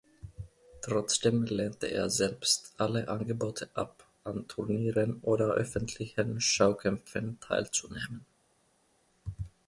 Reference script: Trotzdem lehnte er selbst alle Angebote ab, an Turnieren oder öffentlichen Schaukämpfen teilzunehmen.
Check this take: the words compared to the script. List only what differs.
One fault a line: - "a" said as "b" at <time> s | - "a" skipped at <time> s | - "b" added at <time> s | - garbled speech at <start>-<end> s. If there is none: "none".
none